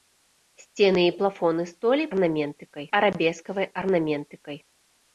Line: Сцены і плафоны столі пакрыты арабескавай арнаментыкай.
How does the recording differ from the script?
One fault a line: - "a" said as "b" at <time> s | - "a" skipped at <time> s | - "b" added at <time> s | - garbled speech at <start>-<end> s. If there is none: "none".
- "пакрыты" said as "арнаментыкай" at 2.1 s